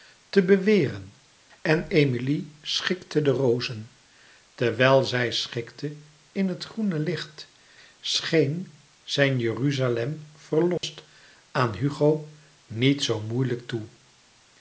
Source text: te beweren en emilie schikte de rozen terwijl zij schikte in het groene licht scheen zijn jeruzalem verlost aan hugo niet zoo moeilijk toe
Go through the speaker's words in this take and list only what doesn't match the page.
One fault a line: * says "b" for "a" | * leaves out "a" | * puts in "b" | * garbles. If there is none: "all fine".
all fine